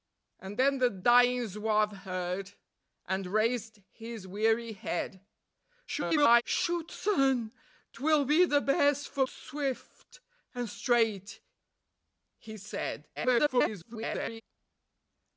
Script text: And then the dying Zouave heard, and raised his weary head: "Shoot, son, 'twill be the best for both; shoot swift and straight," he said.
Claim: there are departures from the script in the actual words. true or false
true